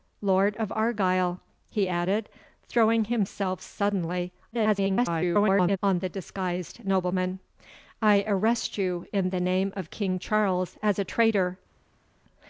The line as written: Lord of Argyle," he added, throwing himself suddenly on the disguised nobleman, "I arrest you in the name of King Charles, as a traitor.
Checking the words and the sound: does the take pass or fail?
fail